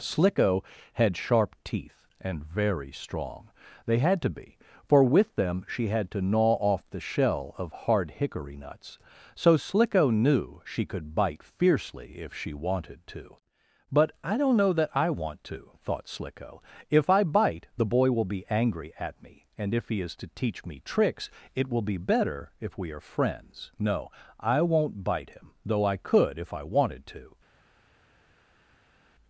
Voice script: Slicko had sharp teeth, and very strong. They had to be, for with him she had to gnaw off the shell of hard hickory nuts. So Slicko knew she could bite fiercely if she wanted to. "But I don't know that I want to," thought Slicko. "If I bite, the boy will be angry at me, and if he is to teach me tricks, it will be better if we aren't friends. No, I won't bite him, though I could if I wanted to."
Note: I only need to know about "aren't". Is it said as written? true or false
false